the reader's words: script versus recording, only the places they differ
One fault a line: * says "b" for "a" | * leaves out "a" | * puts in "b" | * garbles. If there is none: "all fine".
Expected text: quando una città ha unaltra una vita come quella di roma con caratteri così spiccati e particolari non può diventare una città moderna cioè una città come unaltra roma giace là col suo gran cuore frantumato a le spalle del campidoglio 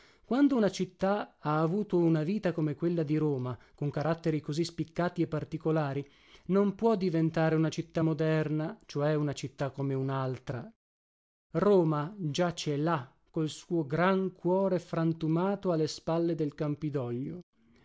* says "avuto" for "unaltra"